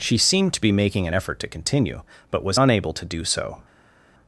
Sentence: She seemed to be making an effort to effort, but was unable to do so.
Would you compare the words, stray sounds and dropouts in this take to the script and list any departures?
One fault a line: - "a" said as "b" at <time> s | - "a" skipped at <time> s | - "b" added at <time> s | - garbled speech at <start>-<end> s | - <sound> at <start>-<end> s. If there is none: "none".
- "effort" said as "continue" at 1.5 s